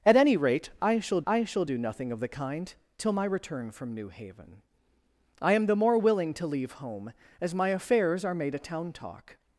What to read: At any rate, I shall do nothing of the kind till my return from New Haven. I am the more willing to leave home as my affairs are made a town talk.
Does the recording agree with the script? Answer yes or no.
no